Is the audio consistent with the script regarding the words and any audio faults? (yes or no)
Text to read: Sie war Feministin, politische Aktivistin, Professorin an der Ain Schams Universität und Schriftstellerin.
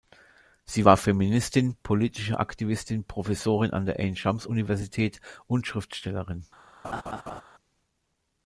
no